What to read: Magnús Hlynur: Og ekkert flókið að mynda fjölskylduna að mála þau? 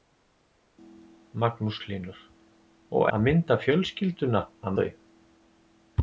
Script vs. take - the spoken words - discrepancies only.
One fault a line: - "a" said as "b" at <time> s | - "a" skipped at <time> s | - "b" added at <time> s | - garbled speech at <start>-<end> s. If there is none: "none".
- "ekkert flókið" skipped at 3.0 s
- "mála" skipped at 4.8 s